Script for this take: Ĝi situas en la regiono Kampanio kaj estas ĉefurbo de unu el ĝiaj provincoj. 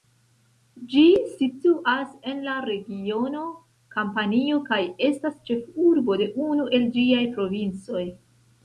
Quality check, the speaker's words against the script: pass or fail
pass